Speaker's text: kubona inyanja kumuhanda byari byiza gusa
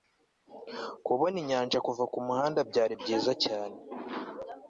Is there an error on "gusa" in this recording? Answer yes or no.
yes